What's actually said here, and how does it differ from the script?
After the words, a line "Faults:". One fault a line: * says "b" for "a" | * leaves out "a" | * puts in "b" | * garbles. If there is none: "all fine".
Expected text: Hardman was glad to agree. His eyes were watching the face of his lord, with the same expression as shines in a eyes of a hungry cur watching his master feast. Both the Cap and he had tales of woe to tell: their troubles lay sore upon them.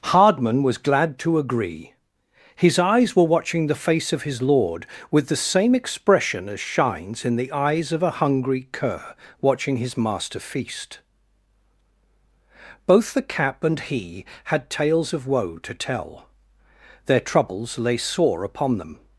Hardman was glad to agree. His eyes were watching the face of his lord, with the same expression as shines in the eyes of a hungry cur watching his master feast. Both the Cap and he had tales of woe to tell: their troubles lay sore upon them.
Faults:
* says "the" for "a"